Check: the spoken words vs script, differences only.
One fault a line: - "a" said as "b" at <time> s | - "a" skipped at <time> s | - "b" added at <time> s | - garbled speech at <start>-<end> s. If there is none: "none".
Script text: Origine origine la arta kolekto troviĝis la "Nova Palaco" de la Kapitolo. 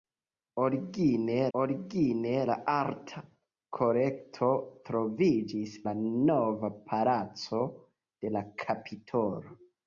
none